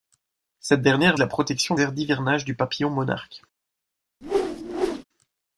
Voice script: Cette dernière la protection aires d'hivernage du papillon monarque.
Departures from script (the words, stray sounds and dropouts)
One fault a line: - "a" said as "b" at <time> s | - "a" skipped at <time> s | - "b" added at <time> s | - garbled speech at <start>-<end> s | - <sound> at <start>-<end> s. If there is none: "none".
- whoosh at 4.2-5.0 s